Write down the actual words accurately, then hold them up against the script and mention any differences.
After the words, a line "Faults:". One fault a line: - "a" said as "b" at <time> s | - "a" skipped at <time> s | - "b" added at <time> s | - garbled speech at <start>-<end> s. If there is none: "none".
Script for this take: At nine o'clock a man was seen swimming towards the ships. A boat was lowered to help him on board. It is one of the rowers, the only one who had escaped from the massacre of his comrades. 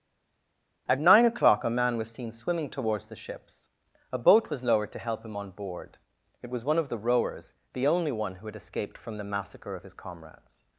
At nine o'clock a man was seen swimming towards the ships. A boat was lowered to help him on board. It was one of the rowers, the only one who had escaped from the massacre of his comrades.
Faults:
- "is" said as "was" at 6.5 s